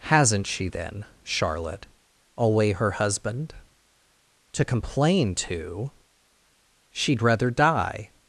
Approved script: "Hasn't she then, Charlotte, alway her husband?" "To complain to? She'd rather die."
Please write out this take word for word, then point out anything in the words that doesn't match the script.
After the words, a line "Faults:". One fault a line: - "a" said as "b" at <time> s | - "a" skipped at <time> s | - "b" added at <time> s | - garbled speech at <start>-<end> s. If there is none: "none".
"Hasn't she then, Charlotte, alway her husband?" "To complain to? She'd rather die."
Faults:
none